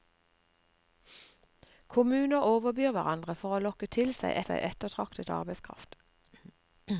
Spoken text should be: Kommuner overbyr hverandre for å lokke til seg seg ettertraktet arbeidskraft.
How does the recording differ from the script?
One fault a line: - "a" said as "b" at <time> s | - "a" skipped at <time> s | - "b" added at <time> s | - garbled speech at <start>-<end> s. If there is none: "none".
none